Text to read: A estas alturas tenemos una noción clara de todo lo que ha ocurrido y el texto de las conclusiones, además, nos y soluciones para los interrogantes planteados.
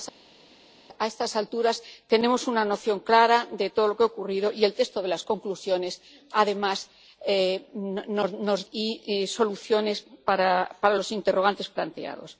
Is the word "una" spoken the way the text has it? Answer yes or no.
yes